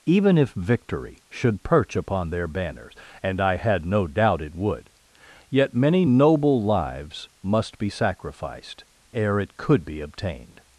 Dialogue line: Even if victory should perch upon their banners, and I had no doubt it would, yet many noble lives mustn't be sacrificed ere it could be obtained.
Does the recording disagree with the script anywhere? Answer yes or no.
yes